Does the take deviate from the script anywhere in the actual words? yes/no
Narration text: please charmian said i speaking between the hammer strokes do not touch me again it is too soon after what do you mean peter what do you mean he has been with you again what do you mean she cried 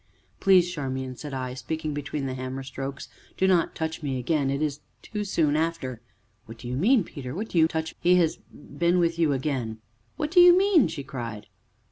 yes